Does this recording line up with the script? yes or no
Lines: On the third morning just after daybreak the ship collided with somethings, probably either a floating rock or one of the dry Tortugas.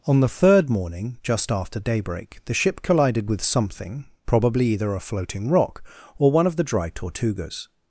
no